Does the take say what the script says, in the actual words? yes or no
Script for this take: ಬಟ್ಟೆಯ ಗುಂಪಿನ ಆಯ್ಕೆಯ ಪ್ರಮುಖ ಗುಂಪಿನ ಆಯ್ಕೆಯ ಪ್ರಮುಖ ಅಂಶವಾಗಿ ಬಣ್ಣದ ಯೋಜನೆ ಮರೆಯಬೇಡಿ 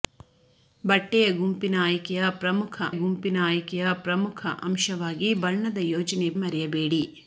yes